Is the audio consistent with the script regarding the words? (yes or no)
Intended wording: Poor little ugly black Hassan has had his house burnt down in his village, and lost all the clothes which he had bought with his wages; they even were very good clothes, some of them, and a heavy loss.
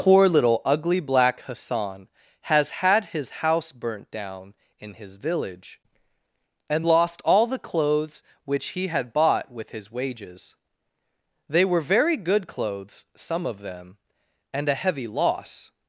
no